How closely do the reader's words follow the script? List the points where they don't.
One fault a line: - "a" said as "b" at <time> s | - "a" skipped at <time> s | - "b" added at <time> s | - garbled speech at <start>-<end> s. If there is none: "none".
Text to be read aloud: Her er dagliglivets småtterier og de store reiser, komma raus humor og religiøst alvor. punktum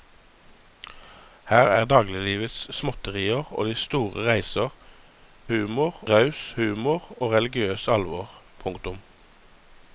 - "komma" said as "humor" at 5.5 s